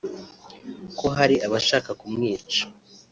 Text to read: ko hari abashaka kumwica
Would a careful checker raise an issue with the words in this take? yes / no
no